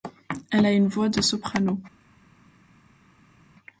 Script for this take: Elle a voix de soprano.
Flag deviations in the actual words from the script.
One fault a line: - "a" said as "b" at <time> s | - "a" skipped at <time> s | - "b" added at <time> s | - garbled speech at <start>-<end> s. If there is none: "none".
- "une" added at 0.7 s